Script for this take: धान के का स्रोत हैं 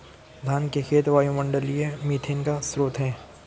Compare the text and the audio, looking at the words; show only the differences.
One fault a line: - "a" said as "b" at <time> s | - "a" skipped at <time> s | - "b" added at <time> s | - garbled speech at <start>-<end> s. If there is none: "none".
- "खेत वायुमंडलीय मीथेन" added at 0.8 s